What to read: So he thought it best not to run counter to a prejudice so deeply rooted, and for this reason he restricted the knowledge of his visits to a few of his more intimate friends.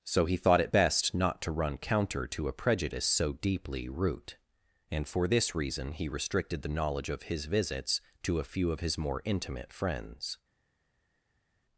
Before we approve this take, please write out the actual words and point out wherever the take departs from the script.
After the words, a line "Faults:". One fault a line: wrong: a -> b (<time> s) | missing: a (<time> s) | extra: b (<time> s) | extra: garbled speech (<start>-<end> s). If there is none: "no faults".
So he thought it best not to run counter to a prejudice so deeply root, and for this reason he restricted the knowledge of his visits to a few of his more intimate friends.
Faults:
wrong: rooted -> root (3.9 s)